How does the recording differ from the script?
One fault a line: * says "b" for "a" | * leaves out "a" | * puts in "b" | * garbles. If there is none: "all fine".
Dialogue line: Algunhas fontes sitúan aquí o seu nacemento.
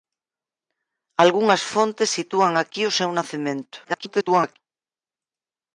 * garbles